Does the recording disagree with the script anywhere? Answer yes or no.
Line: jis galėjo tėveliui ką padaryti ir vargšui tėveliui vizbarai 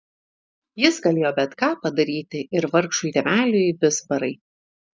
yes